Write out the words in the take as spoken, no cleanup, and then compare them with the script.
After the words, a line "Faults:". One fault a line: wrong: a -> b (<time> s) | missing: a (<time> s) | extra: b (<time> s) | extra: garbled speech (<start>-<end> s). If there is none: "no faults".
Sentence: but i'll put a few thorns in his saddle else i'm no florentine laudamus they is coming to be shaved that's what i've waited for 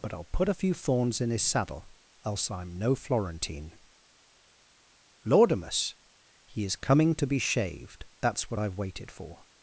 but i'll put a few thorns in his saddle else i'm no florentine laudamus he is coming to be shaved that's what i've waited for
Faults:
wrong: they -> he (6.4 s)